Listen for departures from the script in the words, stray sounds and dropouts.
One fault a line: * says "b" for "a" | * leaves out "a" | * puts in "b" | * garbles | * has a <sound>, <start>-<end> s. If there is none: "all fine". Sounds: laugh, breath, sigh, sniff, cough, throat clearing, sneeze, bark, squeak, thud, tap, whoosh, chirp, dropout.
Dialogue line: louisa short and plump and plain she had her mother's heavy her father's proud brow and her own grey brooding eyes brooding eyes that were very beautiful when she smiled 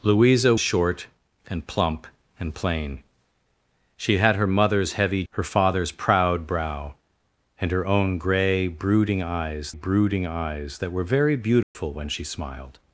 * has a dropout, 11.6-11.8 s